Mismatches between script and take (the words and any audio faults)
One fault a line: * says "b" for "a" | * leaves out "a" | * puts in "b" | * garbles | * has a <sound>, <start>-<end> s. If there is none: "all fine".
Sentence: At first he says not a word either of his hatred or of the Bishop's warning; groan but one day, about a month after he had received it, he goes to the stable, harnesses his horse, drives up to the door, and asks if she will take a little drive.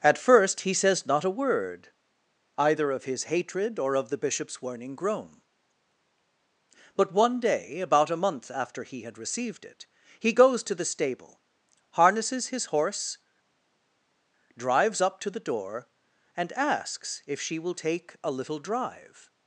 all fine